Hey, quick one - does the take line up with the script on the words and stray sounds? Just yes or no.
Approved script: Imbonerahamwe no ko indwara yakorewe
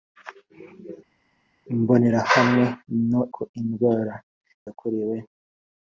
yes